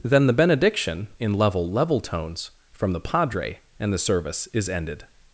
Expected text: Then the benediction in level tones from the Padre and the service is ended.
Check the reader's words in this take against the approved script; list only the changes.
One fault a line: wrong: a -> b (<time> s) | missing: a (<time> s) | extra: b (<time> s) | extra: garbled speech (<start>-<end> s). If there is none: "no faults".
extra: level (1.7 s)